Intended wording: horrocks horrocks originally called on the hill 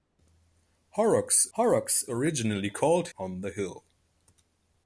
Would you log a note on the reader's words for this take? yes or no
no